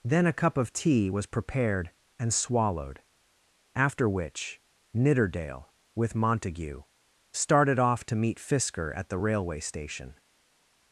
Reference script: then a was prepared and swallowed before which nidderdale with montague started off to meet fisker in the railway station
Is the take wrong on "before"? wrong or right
wrong